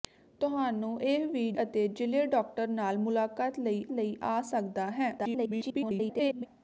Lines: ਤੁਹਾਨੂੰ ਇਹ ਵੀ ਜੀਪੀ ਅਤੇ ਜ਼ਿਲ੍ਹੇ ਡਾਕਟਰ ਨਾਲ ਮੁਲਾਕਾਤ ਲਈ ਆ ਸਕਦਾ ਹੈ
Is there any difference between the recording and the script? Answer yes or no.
yes